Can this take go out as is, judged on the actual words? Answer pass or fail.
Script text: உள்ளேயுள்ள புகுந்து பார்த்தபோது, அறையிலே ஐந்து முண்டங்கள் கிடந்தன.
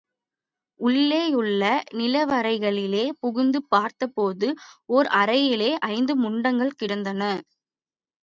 fail